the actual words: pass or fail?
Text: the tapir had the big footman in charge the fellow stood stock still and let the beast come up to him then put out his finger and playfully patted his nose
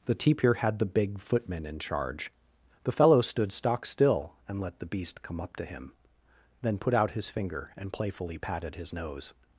pass